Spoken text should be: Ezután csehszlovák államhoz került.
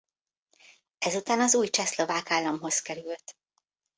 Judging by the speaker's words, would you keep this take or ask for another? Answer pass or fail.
fail